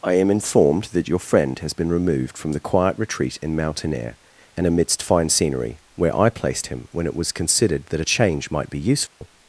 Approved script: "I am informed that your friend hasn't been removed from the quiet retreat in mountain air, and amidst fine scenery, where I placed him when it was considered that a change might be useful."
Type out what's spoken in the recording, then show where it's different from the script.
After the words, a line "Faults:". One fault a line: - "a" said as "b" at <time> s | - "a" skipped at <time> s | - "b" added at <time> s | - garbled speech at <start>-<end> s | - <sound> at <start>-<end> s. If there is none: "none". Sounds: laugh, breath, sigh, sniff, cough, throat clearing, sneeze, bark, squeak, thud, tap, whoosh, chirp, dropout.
"I am informed that your friend has been removed from the quiet retreat in mountain air, and amidst fine scenery, where I placed him when it was considered that a change might be useful."
Faults:
- "hasn't" said as "has" at 1.6 s
- dropout at 9.1-9.2 s